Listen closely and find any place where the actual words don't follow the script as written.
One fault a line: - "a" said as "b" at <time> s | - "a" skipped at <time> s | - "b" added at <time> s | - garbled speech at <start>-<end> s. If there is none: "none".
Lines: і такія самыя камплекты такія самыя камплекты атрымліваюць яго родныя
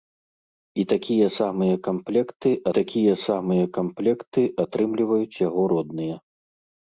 none